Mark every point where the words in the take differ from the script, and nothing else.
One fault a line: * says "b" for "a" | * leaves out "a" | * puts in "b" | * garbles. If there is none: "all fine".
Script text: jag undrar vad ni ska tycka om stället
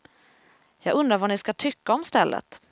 all fine